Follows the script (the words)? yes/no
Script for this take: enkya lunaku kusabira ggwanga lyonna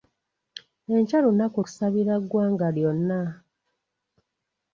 yes